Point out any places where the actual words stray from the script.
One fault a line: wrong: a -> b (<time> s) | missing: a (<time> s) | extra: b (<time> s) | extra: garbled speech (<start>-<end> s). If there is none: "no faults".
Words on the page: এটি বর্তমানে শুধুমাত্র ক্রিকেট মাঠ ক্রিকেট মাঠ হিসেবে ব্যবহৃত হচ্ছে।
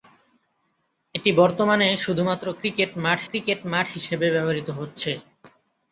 no faults